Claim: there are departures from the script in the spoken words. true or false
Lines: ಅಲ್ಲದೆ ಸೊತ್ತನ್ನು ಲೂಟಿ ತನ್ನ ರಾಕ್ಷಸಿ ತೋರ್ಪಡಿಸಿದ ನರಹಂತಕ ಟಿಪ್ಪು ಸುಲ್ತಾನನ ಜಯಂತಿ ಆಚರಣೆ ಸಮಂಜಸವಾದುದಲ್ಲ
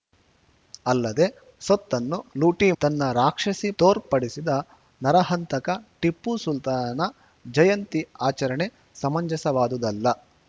false